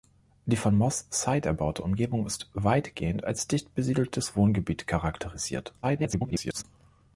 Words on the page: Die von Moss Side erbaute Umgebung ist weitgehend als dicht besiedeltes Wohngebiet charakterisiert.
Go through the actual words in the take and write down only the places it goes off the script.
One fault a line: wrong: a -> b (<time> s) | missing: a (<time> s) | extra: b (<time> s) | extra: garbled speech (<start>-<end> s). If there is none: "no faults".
extra: garbled speech (5.8-6.6 s)